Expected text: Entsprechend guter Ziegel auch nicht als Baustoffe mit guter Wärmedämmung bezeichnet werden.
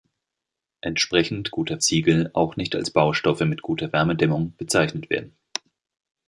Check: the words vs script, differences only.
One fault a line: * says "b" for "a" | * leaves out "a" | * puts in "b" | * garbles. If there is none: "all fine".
all fine